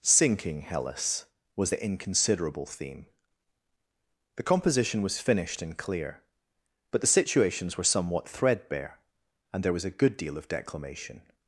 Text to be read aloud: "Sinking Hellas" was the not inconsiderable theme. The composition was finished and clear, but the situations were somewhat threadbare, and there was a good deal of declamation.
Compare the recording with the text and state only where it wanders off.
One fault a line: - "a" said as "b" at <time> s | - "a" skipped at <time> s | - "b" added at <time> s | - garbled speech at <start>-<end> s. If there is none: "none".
- "not" skipped at 1.8 s